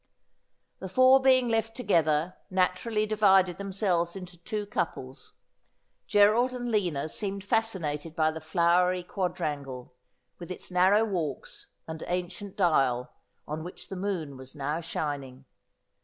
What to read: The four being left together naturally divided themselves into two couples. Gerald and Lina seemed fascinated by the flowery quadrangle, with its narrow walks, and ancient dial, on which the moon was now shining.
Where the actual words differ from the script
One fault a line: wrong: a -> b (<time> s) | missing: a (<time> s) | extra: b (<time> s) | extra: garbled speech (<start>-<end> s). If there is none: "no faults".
no faults